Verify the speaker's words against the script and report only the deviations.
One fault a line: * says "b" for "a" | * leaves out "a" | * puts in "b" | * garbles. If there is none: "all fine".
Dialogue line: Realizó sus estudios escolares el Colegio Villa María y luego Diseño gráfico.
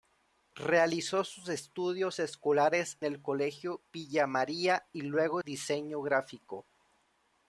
all fine